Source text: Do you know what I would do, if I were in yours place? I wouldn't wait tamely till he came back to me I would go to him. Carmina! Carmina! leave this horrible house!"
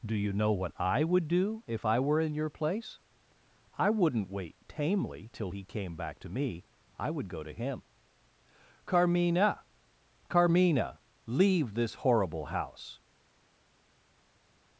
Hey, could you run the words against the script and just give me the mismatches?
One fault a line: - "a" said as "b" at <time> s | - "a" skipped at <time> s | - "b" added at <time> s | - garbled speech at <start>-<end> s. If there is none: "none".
- "yours" said as "your" at 2.3 s